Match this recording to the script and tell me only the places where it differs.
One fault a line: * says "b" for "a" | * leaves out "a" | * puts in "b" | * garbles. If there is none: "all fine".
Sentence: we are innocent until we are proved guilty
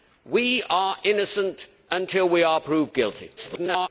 * garbles